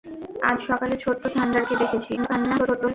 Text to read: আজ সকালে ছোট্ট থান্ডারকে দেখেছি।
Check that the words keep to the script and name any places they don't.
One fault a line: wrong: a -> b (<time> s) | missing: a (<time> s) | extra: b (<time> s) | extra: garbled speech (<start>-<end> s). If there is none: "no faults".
extra: garbled speech (2.2-2.9 s)